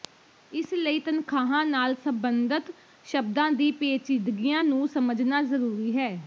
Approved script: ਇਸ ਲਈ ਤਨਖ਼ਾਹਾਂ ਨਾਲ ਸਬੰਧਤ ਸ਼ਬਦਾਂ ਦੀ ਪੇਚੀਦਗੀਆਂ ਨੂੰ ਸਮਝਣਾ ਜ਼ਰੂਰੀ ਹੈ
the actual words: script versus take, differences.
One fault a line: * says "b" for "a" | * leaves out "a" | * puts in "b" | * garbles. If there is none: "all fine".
all fine